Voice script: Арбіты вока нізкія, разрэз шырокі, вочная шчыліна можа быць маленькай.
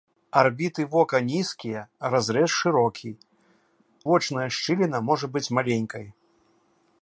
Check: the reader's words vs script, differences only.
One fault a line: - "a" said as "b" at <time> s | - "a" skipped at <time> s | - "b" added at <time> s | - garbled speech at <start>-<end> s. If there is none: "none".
none